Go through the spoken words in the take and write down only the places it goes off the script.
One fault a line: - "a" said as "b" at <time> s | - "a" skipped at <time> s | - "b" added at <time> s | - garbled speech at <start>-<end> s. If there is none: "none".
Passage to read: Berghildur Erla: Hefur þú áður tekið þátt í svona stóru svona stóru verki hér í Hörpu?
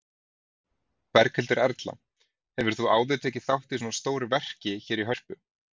- "svona stóru" skipped at 4.3 s